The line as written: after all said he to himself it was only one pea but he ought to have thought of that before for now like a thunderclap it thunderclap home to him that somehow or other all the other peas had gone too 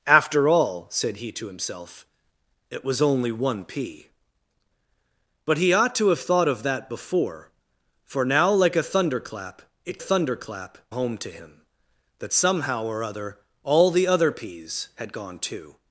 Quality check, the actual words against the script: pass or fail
pass